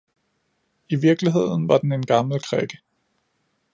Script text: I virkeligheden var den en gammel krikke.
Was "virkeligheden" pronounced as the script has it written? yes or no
yes